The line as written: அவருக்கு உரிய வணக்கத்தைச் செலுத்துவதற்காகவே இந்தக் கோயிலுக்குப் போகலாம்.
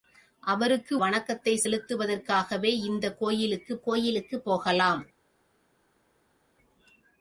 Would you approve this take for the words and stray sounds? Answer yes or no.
no